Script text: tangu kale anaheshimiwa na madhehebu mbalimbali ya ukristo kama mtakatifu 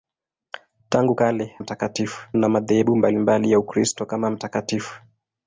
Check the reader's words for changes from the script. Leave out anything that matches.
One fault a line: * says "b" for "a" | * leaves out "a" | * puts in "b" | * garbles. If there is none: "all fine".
* says "mtakatifu" for "anaheshimiwa"